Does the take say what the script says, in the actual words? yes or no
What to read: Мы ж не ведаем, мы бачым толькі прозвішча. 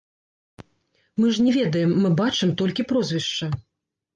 yes